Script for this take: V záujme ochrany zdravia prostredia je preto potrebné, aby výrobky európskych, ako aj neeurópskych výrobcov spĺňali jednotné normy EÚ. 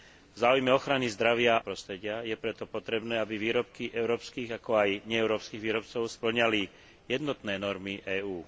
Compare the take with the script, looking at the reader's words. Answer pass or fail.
pass